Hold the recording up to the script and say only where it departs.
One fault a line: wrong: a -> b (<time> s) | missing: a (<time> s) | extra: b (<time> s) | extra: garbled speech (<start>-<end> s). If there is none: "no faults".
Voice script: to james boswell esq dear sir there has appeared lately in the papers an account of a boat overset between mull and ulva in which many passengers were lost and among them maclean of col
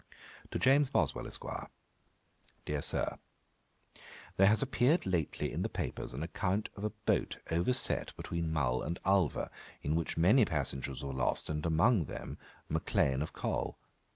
no faults